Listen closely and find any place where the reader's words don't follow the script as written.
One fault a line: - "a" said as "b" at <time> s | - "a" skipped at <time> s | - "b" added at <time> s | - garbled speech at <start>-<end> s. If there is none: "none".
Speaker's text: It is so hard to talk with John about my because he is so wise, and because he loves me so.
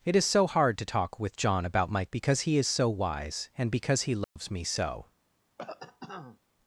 none